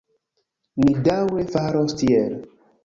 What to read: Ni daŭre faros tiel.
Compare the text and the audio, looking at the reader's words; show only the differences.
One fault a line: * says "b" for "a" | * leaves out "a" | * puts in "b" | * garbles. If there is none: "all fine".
all fine